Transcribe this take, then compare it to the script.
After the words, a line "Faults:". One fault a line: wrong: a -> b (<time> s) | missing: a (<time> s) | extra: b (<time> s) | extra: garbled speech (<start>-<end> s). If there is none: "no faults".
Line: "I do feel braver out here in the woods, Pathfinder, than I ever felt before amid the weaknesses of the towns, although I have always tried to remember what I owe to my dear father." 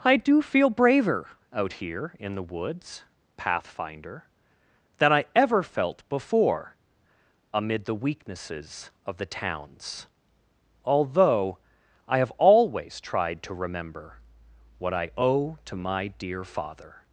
"I do feel braver out here in the woods, Pathfinder, than I ever felt before amid the weaknesses of the towns, although I have always tried to remember what I owe to my dear father."
Faults:
no faults